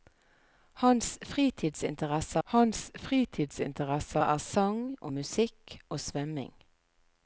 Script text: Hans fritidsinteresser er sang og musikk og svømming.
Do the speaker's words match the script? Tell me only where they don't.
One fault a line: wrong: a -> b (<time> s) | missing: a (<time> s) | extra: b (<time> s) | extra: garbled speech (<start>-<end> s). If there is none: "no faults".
extra: hans fritidsinteresser (2.4 s)